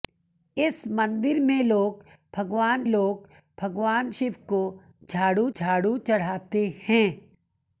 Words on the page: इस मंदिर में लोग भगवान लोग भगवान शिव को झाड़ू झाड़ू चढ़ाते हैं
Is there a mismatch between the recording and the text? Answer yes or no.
no